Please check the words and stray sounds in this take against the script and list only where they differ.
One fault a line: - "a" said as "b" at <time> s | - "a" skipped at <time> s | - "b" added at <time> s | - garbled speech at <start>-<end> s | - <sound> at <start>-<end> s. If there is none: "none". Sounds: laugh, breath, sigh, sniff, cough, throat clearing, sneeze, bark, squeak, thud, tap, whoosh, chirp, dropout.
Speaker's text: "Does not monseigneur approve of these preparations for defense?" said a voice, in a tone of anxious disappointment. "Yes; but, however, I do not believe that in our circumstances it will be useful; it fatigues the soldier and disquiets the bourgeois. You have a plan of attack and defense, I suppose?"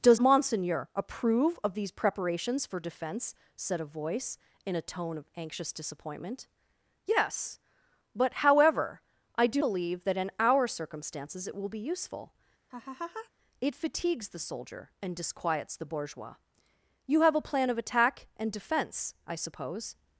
- "not" skipped at 0.2 s
- "not" skipped at 9.6 s
- laugh at 12.7-13.3 s